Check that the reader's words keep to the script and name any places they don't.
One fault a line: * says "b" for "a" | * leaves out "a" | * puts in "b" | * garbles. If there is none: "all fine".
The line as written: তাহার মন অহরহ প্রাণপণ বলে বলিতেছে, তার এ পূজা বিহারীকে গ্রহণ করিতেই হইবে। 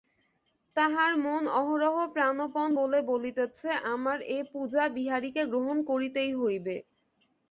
* says "আমার" for "তার"